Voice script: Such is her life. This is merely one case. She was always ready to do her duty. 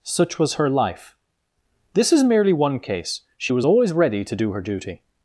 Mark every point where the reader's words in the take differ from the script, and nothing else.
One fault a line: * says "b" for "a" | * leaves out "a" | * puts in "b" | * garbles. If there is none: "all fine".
* says "was" for "is"